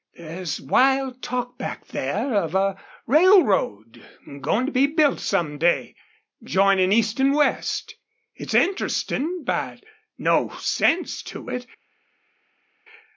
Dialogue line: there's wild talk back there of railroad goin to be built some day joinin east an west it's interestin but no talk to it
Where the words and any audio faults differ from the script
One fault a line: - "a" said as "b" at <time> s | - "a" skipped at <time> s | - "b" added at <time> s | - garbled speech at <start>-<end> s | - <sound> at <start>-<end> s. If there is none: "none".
- "a" added at 2.5 s
- "talk" said as "sense" at 10.6 s